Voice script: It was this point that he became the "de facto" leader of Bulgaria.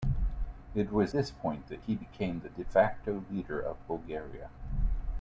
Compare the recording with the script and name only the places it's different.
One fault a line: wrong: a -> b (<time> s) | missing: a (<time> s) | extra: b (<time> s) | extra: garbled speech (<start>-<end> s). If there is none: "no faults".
no faults